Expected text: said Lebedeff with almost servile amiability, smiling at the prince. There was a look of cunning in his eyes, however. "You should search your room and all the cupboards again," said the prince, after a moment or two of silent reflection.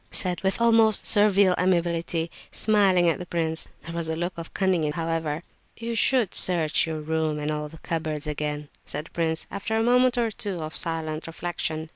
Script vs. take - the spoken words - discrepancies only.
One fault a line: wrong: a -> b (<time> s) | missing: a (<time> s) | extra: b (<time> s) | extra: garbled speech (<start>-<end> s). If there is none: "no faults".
missing: Lebedeff (0.4 s)
missing: his eyes (4.9 s)